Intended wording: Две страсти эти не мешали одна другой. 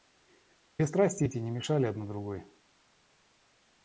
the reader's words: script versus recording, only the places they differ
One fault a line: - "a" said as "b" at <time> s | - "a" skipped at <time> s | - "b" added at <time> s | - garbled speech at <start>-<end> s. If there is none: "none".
none